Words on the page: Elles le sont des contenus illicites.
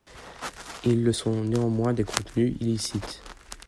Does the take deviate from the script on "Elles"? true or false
true